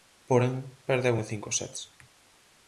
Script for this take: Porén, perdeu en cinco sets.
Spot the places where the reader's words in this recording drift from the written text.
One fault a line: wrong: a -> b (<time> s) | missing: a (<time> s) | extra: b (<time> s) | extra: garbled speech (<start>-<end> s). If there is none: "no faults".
no faults